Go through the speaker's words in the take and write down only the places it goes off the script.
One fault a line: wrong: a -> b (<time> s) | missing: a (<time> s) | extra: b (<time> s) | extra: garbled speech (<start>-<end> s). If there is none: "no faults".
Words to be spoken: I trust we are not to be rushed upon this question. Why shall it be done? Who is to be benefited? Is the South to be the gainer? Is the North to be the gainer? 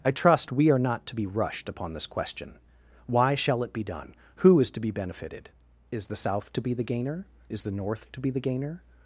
no faults